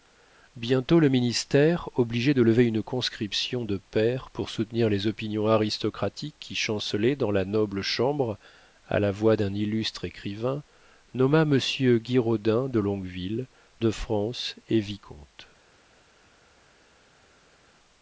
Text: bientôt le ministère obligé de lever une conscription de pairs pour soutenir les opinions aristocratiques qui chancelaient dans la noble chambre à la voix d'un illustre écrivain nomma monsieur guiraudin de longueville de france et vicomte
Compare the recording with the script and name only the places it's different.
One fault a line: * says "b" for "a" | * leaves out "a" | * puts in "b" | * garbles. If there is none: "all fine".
all fine